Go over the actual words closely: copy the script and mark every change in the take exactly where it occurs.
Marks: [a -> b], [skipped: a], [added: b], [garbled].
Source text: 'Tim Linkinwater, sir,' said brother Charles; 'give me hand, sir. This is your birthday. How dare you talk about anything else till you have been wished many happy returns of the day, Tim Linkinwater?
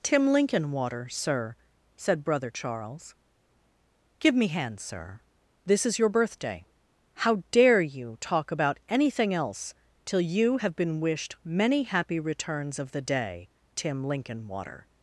'Tim Linkinwater, sir,' said brother Charles; 'give me hand, sir. This is your birthday. How dare you talk about anything else till you have been wished many happy returns of the day, Tim Linkinwater?